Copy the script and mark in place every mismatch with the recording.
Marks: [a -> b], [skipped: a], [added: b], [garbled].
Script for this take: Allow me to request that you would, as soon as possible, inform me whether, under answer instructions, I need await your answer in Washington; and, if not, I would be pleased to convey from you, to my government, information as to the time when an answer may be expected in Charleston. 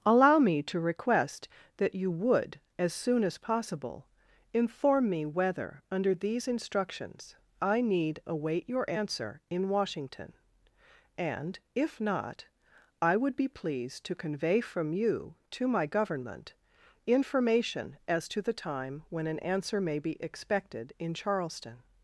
Allow me to request that you would, as soon as possible, inform me whether, under [answer -> these] instructions, I need await your answer in Washington; and, if not, I would be pleased to convey from you, to my government, information as to the time when an answer may be expected in Charleston.